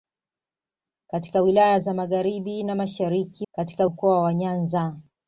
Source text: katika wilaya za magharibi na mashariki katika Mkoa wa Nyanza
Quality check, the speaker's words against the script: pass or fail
pass